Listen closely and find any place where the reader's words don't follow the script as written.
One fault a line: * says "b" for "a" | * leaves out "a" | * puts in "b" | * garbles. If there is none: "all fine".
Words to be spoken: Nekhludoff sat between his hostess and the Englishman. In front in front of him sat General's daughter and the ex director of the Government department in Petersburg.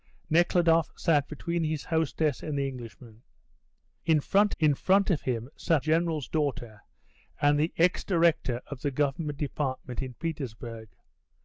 all fine